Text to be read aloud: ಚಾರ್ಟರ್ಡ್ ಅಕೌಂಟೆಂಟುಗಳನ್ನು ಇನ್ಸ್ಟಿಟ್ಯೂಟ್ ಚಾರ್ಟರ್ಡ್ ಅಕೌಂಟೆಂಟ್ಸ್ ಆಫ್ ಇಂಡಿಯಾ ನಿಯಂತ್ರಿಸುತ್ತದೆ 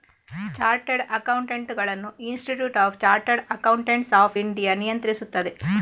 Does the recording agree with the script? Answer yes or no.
no